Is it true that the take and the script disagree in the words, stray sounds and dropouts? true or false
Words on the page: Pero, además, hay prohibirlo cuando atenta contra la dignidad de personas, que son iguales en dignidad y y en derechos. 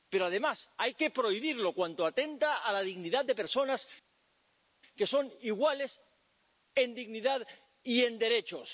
true